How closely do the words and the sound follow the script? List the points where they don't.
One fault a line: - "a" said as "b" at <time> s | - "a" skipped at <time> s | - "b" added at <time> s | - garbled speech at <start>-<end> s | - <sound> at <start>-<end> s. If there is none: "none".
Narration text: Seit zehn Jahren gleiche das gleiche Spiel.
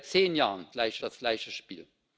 none